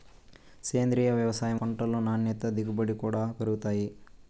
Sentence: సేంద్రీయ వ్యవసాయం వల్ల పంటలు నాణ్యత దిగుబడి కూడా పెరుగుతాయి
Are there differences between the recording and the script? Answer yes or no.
yes